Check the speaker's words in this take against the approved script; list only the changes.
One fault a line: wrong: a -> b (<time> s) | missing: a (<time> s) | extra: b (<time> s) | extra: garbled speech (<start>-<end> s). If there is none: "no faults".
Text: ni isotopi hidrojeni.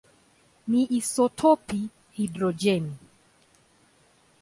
no faults